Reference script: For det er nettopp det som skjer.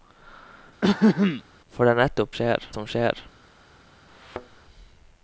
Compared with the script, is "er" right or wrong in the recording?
right